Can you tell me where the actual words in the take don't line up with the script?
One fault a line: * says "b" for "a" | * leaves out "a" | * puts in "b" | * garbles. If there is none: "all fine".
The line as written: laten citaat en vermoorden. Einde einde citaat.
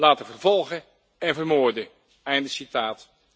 * says "vervolgen" for "citaat"
* leaves out "einde"